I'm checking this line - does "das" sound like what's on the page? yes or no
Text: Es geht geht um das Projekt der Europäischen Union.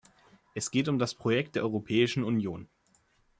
yes